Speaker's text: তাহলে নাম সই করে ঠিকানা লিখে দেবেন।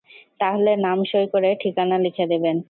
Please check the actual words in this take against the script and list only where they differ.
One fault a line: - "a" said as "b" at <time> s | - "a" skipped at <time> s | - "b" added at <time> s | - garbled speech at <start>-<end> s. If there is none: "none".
none